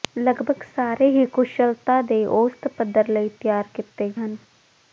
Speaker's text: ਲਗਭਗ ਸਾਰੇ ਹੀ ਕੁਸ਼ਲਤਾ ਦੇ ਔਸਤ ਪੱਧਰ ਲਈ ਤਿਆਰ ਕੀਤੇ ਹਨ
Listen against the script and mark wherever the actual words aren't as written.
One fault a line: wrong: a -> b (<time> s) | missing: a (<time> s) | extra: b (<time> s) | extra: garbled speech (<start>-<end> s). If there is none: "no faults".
no faults